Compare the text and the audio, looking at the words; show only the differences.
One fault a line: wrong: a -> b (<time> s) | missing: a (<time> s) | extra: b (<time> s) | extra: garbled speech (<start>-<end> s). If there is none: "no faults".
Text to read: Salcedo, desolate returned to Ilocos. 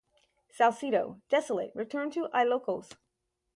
no faults